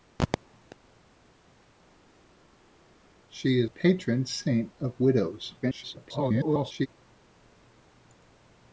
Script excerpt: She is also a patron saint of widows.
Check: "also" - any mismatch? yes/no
yes